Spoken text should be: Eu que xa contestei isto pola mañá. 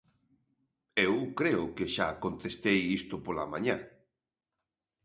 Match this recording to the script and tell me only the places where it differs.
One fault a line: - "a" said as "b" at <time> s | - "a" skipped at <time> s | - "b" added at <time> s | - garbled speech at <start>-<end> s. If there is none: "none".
- "creo" added at 1.4 s